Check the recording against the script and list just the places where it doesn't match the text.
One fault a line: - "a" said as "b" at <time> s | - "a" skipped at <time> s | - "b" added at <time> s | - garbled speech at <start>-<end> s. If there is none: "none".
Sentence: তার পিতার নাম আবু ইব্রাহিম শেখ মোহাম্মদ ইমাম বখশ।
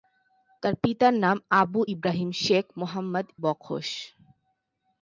- "ইমাম" skipped at 3.3 s